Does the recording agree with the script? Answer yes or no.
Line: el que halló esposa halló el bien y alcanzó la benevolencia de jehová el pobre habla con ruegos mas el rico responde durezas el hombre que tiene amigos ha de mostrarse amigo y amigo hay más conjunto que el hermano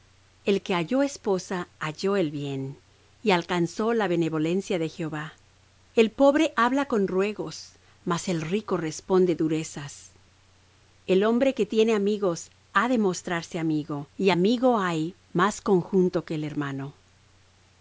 yes